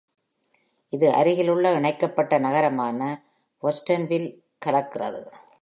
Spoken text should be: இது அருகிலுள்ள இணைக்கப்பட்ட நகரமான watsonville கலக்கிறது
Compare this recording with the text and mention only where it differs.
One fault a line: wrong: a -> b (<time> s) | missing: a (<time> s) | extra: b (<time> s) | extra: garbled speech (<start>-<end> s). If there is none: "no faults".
no faults